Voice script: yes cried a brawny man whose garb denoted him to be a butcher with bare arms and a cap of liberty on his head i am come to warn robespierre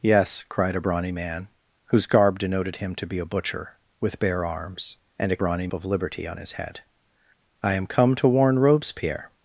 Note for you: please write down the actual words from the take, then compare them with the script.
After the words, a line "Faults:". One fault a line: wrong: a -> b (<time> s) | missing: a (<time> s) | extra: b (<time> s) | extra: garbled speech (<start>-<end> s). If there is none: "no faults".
yes cried a brawny man whose garb denoted him to be a butcher with bare arms and a brawny of liberty on his head i am come to warn robespierre
Faults:
wrong: cap -> brawny (5.4 s)